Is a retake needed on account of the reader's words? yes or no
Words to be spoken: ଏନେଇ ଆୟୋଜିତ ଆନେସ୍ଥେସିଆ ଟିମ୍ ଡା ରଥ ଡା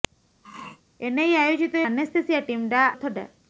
no